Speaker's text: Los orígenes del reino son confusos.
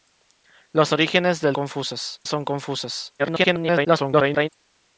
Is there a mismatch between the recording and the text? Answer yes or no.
yes